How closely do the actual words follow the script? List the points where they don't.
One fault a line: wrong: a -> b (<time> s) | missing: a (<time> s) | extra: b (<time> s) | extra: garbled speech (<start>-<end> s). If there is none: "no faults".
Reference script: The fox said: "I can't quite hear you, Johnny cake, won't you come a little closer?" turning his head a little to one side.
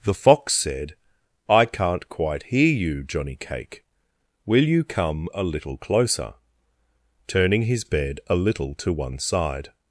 wrong: won't -> will (4.5 s)
wrong: head -> bed (7.8 s)